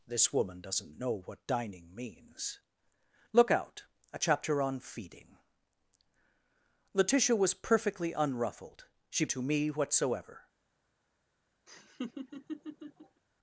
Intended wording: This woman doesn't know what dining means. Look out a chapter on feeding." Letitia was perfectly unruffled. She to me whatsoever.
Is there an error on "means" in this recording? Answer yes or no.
no